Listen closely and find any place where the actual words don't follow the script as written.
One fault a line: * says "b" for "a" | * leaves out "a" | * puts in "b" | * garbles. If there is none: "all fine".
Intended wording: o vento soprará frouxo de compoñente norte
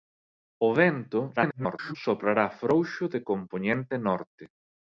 * garbles